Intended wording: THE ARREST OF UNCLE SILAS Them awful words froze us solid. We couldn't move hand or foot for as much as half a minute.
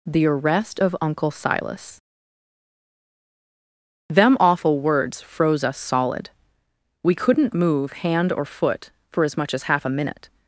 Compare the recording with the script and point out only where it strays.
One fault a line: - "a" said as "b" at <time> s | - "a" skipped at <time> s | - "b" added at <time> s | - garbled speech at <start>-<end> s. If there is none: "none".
none